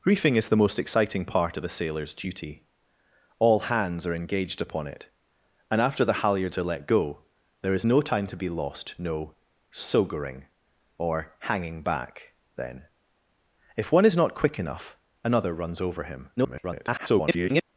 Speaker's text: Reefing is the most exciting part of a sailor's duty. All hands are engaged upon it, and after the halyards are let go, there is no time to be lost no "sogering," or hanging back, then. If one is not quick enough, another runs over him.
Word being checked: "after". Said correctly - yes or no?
yes